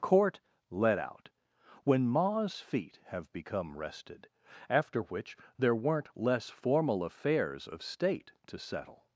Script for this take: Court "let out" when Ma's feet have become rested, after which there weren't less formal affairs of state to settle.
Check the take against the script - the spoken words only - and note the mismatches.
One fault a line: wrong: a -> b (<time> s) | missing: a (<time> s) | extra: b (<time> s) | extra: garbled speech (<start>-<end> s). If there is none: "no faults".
no faults